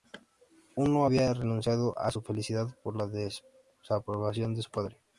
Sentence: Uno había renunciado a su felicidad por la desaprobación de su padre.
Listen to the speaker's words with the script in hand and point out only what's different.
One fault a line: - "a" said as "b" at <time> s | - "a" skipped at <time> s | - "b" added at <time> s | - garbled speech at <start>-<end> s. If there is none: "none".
none